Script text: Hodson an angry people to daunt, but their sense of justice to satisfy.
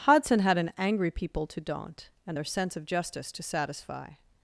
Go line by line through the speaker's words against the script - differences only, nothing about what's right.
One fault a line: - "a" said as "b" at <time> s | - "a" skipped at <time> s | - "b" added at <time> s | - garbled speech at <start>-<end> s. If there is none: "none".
- "had" added at 0.4 s
- "but" said as "and" at 2.2 s